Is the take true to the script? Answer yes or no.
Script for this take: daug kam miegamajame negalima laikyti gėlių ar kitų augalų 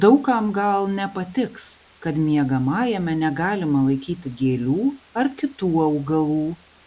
no